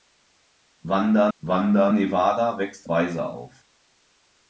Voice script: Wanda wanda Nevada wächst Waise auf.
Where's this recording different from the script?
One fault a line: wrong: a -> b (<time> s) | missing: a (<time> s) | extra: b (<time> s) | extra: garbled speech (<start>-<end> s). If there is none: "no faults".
no faults